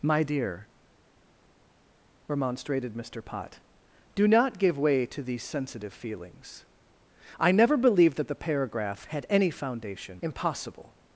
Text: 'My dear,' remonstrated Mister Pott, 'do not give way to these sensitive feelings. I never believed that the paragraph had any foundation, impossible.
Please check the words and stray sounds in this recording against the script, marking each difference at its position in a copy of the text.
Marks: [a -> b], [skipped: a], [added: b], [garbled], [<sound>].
'My dear,' remonstrated Mister Pott, 'do not give way to these sensitive feelings. I never believed that the paragraph had any foundation, impossible.